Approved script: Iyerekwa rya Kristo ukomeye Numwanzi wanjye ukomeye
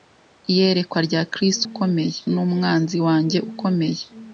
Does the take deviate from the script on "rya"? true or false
false